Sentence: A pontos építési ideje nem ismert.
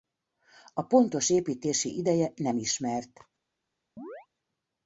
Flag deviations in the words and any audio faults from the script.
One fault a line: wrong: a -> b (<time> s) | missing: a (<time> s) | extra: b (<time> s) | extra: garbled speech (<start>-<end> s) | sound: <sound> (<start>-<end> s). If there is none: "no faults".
sound: chirp (4.0-4.3 s)